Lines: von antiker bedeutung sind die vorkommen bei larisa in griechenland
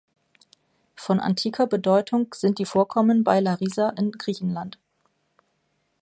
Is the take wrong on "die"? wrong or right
right